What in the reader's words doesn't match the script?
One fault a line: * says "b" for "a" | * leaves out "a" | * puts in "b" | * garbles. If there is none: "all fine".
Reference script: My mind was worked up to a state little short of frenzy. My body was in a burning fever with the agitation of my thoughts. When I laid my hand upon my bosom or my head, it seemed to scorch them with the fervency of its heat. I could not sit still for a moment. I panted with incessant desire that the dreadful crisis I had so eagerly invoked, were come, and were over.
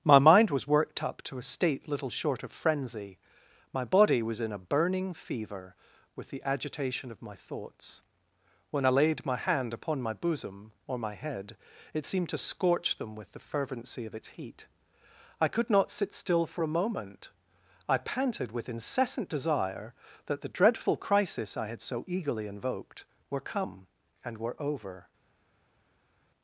all fine